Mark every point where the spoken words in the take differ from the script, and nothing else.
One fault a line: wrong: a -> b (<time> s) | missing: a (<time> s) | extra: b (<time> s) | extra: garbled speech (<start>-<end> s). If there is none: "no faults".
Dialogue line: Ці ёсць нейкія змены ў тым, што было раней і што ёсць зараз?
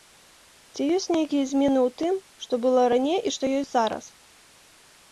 no faults